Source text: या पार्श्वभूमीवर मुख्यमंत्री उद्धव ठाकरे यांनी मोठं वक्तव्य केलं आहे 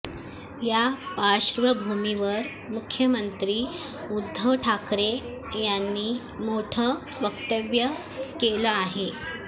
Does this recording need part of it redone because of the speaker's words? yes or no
no